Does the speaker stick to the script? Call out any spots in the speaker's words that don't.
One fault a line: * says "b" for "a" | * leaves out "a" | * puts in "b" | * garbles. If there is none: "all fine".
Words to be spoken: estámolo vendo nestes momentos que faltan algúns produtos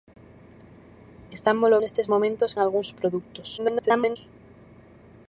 * leaves out "vendo"
* leaves out "que faltan"
* garbles